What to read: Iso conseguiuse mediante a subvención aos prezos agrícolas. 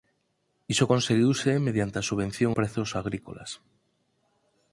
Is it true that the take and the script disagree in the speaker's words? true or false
true